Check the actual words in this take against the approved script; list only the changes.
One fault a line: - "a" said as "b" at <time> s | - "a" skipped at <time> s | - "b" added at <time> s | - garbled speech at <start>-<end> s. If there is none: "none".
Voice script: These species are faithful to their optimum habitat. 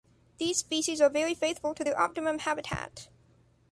- "very" added at 1.1 s